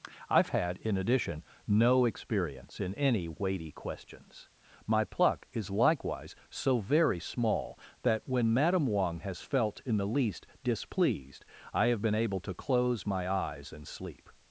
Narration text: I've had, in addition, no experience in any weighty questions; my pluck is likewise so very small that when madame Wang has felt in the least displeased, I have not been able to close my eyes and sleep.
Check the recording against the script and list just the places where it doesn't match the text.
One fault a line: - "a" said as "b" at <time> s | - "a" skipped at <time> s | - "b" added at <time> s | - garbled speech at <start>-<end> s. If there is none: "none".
- "not" skipped at 12.0 s